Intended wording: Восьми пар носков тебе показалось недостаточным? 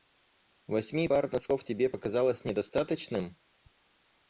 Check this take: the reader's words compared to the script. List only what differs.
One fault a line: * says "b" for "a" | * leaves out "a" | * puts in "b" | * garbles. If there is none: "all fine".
all fine